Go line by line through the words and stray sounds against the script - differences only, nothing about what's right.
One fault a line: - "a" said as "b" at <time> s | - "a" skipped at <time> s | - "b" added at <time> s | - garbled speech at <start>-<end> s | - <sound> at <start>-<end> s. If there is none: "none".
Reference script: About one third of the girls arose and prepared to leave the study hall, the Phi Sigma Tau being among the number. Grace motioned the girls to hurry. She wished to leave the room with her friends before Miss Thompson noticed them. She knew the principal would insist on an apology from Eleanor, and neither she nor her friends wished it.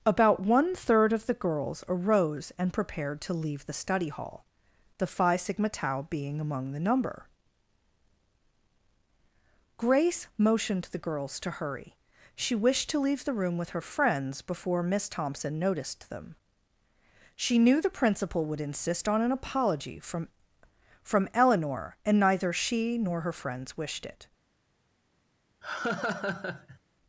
- "from" added at 21.0 s
- laugh at 25.6-26.8 s